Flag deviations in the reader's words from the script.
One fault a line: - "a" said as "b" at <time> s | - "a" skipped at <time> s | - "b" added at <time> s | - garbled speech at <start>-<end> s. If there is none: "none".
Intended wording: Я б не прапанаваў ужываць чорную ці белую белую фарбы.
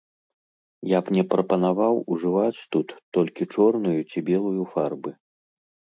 - "тут толькі" added at 2.8 s
- "белую" skipped at 4.6 s